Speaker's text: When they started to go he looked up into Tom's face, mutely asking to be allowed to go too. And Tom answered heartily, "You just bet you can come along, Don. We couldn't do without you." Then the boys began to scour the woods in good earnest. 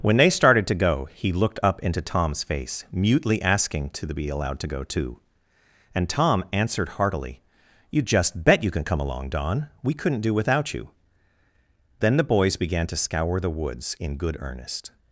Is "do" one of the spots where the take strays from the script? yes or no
no